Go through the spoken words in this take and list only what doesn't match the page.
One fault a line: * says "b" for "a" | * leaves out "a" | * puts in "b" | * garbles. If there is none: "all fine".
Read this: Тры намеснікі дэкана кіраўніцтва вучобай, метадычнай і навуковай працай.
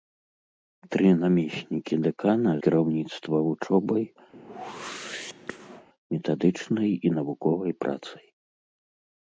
all fine